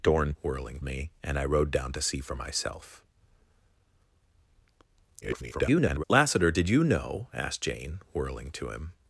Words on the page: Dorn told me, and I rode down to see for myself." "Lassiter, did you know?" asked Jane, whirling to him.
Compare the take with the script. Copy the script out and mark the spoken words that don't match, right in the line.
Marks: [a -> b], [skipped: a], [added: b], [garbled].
Dorn [told -> whirling] me, and I rode down to see for myself." [garbled] "Lassiter, did you know?" asked Jane, whirling to him.